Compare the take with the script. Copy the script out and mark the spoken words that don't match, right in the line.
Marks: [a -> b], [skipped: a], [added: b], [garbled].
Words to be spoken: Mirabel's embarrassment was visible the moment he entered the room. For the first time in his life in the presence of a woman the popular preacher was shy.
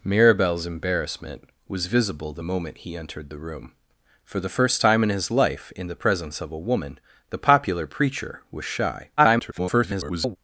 Mirabel's embarrassment was visible the moment he entered the room. For the first time in his life in the presence of a woman the popular preacher was shy. [garbled]